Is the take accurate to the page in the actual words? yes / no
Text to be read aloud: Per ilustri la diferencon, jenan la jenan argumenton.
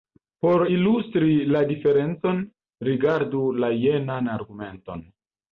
no